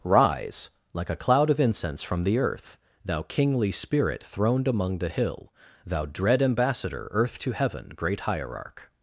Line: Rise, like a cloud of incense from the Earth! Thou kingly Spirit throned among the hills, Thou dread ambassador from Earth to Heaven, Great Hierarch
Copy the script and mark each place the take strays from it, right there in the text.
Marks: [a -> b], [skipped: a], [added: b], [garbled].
Rise, like a cloud of incense from the Earth! Thou kingly Spirit throned among the [hills, -> hill] Thou dread ambassador [skipped: from] Earth to Heaven, Great Hierarch